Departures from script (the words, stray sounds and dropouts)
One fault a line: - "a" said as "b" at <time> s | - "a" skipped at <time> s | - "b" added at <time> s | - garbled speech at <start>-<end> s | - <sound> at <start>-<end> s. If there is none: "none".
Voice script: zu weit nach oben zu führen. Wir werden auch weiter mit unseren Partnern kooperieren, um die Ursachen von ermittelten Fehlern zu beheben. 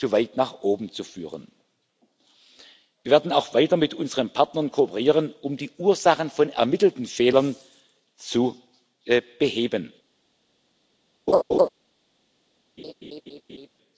- laugh at 11.3-11.7 s
- laugh at 12.8-13.7 s